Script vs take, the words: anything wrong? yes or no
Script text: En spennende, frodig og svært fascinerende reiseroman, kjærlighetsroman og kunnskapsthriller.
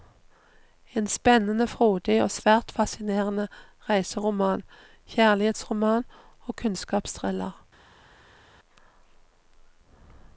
no